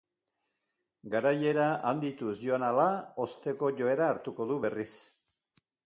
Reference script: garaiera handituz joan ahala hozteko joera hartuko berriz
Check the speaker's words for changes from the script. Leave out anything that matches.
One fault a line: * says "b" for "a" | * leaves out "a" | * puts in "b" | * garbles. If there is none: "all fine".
* puts in "du"